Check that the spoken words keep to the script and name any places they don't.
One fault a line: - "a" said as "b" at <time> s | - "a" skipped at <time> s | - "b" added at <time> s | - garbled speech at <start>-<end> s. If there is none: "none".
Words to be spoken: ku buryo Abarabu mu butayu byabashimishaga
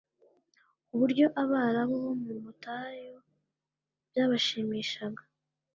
- "bo" added at 2.0 s